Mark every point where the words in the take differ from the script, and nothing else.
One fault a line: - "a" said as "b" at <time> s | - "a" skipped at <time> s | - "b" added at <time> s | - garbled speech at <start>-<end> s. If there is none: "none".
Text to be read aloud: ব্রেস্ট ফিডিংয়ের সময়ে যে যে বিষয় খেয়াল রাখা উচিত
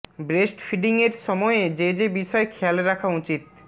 none